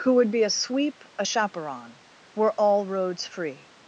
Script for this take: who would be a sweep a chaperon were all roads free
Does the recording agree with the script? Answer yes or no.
yes